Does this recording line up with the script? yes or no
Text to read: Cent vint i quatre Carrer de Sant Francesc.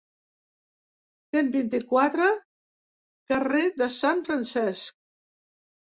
yes